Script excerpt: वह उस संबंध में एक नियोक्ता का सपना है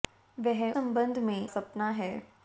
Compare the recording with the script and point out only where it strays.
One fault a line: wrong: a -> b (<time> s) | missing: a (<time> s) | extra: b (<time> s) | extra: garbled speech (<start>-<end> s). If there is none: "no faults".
missing: उस (0.7 s)
missing: एक नियोक्ता का (1.4 s)